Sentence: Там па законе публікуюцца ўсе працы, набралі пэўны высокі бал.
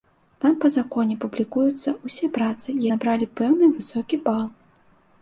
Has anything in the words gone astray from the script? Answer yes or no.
no